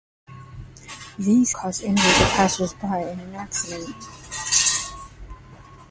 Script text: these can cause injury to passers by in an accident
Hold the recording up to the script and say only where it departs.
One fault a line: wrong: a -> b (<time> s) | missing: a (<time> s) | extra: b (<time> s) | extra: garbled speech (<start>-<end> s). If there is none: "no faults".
missing: can (1.5 s)